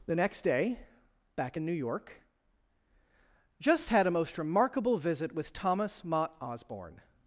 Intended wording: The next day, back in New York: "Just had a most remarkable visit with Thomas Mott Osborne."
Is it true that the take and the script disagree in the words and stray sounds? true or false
false